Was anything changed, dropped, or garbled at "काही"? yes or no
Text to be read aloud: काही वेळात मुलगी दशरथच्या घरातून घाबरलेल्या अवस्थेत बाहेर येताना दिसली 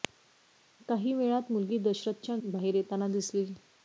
no